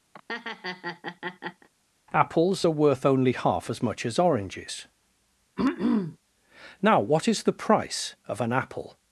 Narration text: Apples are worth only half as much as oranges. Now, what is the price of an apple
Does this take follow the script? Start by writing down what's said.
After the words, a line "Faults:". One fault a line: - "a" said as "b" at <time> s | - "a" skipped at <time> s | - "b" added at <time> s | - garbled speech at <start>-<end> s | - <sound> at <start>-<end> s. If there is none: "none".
Apples are worth only half as much as oranges. Now, what is the price of an apple
Faults:
- laugh at 0.1-1.7 s
- throat clearing at 5.6-6.2 s